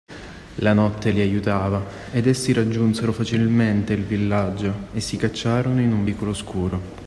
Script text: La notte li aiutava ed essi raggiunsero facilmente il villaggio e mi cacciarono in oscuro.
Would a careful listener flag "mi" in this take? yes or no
yes